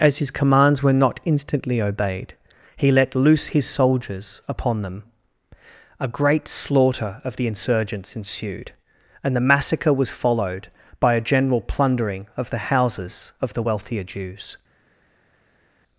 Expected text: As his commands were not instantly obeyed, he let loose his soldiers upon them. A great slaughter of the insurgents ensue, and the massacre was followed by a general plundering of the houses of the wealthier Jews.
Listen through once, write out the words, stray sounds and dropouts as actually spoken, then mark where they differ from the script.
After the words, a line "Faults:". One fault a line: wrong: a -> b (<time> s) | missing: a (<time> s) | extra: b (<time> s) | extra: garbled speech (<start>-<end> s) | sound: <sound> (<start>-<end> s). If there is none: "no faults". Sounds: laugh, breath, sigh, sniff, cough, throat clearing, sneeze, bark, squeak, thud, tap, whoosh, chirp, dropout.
As his commands were not instantly obeyed, he let loose his soldiers upon them. A great slaughter of the insurgents ensued, and the massacre was followed by a general plundering of the houses of the wealthier Jews.
Faults:
wrong: ensue -> ensued (8.1 s)